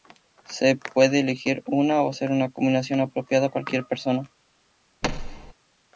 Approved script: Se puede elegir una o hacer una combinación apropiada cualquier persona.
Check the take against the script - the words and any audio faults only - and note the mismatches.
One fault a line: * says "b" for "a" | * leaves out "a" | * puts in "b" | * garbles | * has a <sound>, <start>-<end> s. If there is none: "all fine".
* has a thud, 5.0-5.5 s